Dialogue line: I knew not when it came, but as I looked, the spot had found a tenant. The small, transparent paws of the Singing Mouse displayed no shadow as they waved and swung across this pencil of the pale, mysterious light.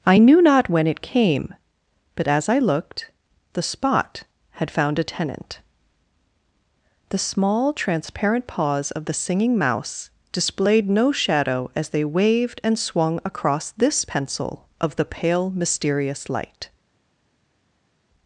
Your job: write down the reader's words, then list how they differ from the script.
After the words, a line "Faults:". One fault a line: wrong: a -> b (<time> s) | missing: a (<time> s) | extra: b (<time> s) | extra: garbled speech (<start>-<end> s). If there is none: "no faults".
I knew not when it came, but as I looked, the spot had found a tenant. The small, transparent paws of the Singing Mouse displayed no shadow as they waved and swung across this pencil of the pale, mysterious light.
Faults:
no faults